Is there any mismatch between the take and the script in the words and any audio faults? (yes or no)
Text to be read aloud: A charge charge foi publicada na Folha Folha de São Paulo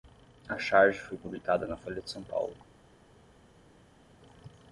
yes